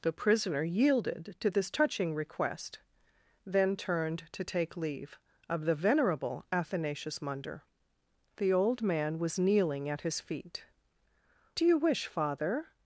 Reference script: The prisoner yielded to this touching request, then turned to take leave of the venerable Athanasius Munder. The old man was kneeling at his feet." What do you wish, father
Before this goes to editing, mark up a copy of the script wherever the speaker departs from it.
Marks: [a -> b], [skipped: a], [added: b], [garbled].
The prisoner yielded to this touching request, then turned to take leave of the venerable Athanasius Munder. The old man was kneeling at his feet." [skipped: What] do you wish, father